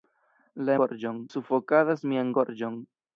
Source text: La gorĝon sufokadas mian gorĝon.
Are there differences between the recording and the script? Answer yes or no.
no